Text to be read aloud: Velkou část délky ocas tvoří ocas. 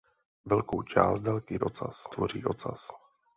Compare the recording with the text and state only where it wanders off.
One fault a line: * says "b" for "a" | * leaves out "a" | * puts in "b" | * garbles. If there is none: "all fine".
all fine